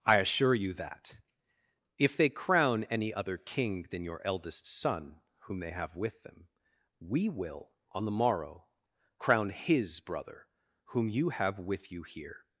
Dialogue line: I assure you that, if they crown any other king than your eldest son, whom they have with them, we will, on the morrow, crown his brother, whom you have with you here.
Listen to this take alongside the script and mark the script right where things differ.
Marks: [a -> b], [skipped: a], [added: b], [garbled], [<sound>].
I assure you that, if they crown any other king than your eldest son, whom they have with them, we will, on the morrow, crown his brother, whom you have with you here.